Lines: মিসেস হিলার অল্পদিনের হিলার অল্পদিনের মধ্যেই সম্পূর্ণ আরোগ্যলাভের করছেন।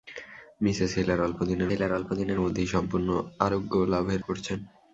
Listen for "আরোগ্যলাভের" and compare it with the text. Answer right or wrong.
right